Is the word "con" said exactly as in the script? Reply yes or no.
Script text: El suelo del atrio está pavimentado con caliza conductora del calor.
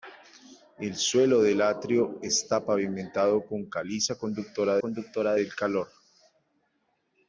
yes